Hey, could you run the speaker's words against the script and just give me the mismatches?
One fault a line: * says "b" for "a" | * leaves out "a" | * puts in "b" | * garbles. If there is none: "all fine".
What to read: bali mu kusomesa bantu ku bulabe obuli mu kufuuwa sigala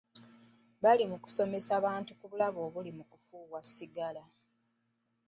all fine